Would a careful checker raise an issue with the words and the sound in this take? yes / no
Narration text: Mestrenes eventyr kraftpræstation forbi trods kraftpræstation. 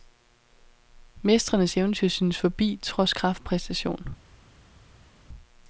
yes